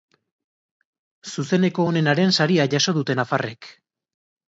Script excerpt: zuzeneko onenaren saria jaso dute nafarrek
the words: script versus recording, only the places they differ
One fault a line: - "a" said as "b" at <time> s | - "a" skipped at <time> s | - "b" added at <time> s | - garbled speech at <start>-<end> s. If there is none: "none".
none